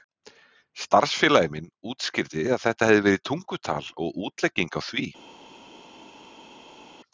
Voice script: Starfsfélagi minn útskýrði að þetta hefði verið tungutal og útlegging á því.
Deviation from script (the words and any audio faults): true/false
false